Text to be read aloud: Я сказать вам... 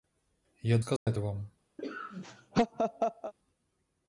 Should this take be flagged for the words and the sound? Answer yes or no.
yes